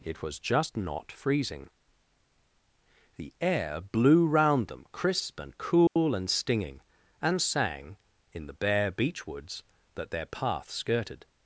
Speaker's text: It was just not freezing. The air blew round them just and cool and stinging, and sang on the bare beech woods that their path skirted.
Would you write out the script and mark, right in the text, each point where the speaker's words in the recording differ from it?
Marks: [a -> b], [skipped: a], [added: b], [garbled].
It was just not freezing. The air blew round them [just -> crisp] and cool and stinging, and sang [on -> in] the bare beech woods that their path skirted.